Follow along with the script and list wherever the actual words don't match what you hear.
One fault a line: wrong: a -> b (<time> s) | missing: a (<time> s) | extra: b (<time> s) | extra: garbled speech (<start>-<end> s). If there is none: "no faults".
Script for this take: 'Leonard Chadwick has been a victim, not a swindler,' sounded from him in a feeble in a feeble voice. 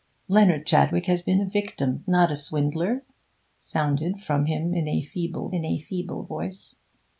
no faults